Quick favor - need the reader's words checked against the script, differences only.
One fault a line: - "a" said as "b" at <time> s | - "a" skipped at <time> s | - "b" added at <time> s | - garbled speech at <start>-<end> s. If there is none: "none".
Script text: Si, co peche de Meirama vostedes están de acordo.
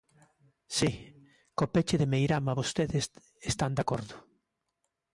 none